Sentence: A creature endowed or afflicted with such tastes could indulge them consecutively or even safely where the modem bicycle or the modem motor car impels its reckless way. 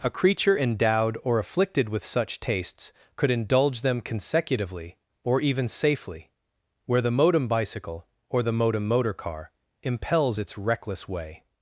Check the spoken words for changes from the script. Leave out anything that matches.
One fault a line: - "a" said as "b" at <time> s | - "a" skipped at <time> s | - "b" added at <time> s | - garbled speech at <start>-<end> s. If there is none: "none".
none